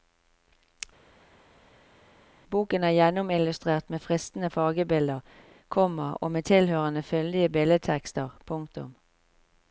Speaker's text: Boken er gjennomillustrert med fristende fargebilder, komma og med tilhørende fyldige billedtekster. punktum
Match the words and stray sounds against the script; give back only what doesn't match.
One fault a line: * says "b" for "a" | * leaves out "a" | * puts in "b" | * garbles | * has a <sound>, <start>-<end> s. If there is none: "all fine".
all fine